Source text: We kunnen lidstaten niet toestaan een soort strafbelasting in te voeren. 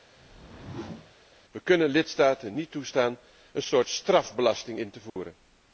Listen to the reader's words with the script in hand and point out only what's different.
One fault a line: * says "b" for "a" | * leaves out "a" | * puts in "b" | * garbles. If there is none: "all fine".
all fine